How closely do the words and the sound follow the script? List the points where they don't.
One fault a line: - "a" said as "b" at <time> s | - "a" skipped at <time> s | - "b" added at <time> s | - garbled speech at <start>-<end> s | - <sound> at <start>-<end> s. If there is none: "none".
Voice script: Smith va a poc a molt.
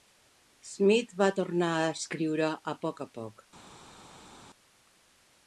- "tornar" added at 1.4 s
- "escriure a" added at 2.0 s
- "molt" said as "poc" at 3.2 s